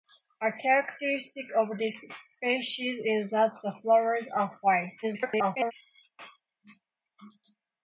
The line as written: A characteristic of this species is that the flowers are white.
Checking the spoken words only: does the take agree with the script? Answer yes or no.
no